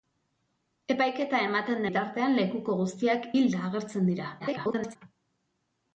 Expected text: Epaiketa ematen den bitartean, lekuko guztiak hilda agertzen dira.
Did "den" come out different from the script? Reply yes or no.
yes